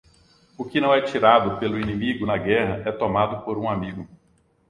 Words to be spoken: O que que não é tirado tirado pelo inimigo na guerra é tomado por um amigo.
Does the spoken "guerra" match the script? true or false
true